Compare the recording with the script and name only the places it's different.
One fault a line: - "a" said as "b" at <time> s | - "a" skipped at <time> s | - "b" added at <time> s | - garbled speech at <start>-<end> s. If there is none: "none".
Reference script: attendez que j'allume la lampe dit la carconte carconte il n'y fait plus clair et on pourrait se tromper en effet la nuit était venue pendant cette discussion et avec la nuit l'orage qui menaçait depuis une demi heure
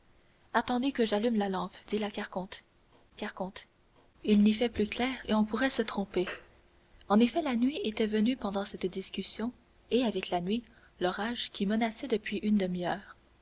none